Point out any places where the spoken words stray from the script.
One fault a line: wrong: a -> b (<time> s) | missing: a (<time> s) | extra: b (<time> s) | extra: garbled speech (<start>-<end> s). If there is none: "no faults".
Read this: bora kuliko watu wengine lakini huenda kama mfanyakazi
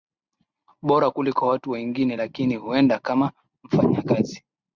no faults